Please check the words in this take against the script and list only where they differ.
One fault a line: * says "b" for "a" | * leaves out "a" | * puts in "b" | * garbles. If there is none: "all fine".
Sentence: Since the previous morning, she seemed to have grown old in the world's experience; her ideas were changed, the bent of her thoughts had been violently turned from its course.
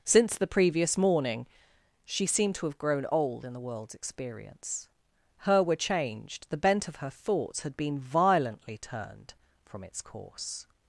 * leaves out "ideas"